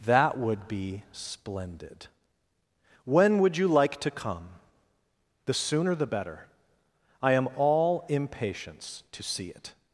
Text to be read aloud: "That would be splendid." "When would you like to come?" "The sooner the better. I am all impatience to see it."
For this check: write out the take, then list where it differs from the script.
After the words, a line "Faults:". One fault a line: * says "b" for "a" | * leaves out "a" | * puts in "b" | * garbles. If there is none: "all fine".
"That would be splendid." "When would you like to come?" "The sooner the better. I am all impatience to see it."
Faults:
all fine